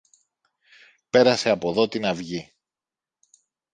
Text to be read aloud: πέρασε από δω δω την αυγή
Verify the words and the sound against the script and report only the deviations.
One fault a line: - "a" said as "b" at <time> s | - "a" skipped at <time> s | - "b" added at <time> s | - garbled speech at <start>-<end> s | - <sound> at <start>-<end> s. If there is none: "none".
- "δω" skipped at 1.9 s